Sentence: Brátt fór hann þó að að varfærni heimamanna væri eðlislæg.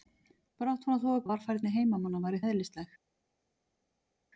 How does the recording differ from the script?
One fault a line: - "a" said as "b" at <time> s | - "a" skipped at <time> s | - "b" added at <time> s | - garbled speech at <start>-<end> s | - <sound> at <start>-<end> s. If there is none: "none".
none